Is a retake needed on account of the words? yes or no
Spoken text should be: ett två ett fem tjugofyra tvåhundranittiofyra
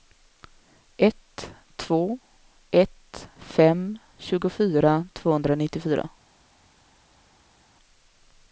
no